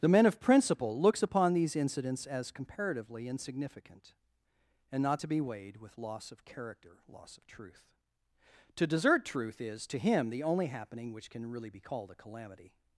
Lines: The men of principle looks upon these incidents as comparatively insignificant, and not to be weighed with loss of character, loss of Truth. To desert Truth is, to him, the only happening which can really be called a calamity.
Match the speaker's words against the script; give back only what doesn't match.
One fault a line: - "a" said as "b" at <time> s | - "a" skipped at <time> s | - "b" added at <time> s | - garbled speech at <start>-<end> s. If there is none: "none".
none